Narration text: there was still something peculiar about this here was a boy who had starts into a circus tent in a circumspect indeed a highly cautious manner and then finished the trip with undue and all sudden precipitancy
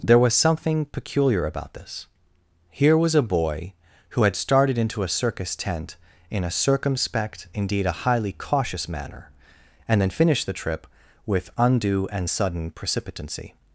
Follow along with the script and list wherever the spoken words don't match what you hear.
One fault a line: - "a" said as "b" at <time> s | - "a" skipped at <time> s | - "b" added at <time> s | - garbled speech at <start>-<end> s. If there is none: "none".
- "still" skipped at 0.3 s
- "starts" said as "started" at 4.4 s
- "all" skipped at 12.3 s